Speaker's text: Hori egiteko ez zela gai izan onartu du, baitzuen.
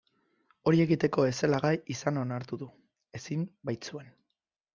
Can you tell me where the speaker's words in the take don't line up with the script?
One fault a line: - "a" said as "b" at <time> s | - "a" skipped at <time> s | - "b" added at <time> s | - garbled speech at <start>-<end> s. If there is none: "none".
- "ezin" added at 3.2 s